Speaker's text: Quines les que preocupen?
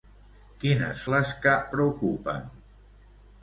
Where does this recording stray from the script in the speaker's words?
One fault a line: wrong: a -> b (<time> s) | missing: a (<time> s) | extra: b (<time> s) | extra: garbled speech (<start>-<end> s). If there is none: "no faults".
no faults